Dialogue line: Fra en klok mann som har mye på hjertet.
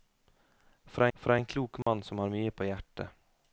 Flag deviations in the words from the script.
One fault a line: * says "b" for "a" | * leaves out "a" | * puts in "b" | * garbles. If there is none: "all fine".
* puts in "fra"